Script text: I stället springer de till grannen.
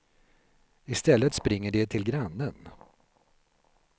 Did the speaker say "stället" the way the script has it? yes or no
yes